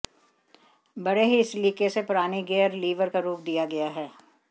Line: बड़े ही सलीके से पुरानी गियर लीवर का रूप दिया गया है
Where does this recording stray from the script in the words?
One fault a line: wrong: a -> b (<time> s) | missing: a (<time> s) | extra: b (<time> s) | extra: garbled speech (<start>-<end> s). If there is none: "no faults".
no faults